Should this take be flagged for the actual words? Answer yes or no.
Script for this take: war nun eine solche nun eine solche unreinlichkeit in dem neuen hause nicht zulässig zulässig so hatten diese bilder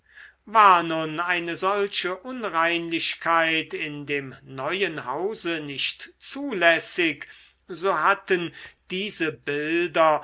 yes